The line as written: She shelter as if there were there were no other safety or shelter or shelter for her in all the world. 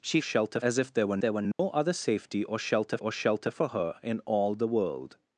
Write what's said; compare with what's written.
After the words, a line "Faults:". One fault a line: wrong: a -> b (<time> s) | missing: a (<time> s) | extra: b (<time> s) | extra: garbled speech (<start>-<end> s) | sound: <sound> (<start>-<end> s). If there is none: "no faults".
She shelter as if there were there were no other safety or shelter or shelter for her in all the world.
Faults:
sound: dropout (1.5-1.6 s)